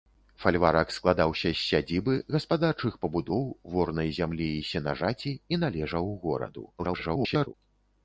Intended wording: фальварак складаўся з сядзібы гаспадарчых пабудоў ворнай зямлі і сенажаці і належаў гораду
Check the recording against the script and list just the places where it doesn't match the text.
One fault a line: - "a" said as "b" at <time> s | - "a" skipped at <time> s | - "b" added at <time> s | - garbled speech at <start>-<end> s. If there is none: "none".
- garbled speech at 6.8-7.5 s